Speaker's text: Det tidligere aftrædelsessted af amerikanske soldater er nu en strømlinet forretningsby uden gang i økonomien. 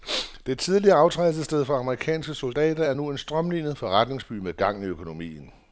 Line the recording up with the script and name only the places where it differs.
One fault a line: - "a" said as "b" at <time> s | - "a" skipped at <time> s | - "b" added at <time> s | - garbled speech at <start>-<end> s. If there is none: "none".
- "af" said as "for" at 1.6 s
- "uden" said as "med" at 4.3 s